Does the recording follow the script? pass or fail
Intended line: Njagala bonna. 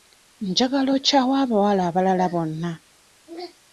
fail